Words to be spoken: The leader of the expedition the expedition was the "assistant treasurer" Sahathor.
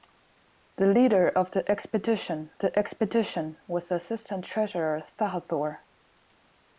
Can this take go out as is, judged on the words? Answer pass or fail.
pass